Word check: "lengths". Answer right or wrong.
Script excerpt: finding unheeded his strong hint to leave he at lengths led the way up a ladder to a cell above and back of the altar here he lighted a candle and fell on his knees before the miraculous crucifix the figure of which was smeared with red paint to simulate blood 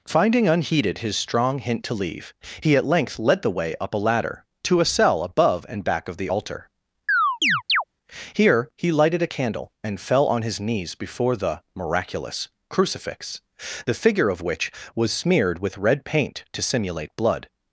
wrong